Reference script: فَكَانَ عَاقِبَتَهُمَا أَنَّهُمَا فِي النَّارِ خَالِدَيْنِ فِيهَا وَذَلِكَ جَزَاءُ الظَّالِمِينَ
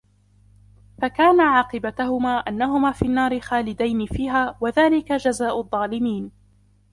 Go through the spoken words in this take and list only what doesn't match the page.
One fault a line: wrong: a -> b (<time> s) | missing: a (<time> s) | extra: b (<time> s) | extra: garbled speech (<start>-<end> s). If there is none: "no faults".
no faults